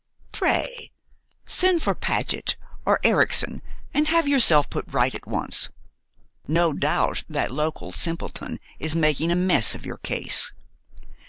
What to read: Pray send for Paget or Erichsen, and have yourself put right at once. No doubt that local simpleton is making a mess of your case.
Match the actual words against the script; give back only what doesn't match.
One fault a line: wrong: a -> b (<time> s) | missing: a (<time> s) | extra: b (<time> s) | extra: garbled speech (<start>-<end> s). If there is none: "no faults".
no faults